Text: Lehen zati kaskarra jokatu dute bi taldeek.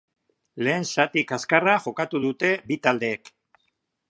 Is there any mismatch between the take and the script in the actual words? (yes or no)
no